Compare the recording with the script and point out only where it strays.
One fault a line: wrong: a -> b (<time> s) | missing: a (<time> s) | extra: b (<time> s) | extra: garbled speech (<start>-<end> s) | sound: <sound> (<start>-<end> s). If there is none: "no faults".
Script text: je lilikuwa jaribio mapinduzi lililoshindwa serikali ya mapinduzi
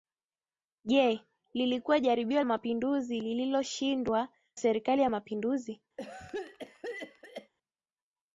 sound: cough (6.0-7.5 s)